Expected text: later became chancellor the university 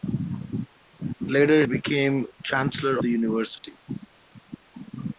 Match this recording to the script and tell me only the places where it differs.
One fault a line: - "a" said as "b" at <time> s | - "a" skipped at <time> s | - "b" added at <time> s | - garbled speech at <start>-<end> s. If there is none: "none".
none